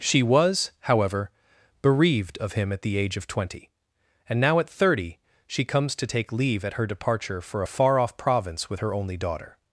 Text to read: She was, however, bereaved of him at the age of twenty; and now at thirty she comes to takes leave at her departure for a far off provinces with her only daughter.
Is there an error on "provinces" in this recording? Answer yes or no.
yes